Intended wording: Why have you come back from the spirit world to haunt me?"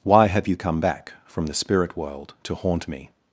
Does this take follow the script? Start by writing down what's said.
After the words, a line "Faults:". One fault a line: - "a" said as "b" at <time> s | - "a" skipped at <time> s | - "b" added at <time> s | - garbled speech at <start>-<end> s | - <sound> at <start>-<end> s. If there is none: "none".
Why have you come back from the spirit world to haunt me?"
Faults:
none